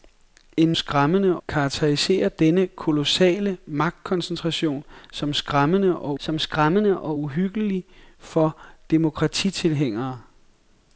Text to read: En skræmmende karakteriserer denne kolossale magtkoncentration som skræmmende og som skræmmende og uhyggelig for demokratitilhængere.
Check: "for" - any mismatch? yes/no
no